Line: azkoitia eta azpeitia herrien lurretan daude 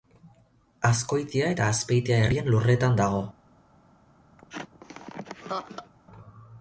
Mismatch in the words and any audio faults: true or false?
true